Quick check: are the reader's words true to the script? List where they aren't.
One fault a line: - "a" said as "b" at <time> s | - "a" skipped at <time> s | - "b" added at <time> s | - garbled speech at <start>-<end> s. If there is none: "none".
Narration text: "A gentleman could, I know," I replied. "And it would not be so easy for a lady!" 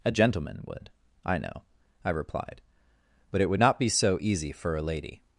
- "could" said as "would" at 0.7 s
- "And" said as "But" at 3.3 s